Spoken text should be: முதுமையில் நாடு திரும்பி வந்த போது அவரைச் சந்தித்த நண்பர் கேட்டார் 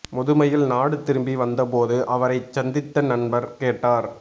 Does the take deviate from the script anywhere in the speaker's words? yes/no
no